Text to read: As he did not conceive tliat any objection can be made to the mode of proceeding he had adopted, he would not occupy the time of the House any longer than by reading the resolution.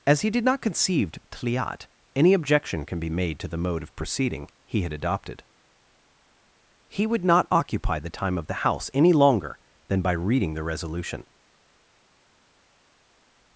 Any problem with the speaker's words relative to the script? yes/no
no